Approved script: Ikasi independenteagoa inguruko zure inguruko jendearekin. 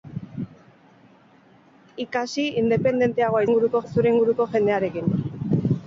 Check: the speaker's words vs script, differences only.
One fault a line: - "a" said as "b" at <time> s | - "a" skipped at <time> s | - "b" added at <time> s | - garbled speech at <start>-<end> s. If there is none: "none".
none